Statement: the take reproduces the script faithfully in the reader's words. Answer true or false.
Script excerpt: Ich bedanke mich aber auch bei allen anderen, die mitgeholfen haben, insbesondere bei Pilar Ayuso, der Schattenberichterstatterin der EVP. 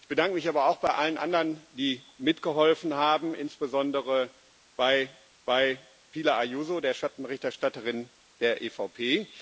false